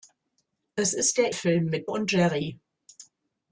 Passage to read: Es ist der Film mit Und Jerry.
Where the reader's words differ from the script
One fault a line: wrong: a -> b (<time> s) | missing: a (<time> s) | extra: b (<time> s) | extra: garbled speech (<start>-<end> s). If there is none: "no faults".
no faults